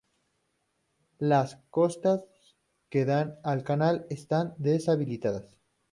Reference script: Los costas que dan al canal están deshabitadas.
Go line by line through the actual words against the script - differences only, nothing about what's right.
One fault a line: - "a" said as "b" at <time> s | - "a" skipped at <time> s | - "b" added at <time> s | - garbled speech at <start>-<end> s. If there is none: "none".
- "Los" said as "Las" at 1.2 s